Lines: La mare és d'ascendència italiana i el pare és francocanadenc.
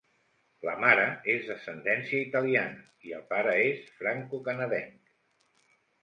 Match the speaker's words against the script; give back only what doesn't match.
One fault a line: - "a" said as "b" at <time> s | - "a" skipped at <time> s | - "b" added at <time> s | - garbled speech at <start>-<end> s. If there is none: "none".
none